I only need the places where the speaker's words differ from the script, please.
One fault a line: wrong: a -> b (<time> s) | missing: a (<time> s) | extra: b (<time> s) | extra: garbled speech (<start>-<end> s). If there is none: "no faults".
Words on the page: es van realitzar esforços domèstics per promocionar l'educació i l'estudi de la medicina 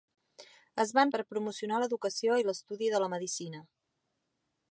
missing: realitzar esforços domèstics (1.1 s)